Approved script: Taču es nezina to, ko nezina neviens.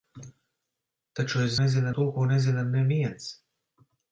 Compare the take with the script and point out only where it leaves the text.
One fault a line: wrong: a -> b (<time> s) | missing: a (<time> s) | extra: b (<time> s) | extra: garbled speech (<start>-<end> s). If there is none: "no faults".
no faults